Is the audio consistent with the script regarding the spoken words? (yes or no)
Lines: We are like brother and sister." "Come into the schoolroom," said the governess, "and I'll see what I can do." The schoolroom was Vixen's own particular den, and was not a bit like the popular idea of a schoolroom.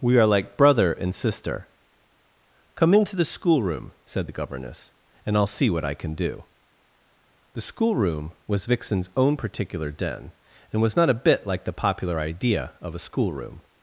yes